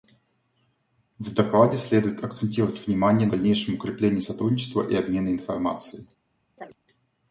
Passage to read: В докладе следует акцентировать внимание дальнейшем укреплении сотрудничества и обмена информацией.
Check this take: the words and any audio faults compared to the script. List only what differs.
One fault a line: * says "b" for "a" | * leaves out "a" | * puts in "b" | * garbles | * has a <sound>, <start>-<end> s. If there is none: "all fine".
* has a chirp, 6.6-6.8 s